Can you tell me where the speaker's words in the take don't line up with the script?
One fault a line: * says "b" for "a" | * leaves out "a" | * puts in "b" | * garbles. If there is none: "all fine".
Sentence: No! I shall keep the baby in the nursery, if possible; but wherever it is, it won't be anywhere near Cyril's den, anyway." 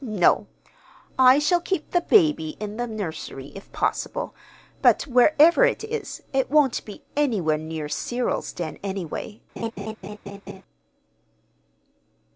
all fine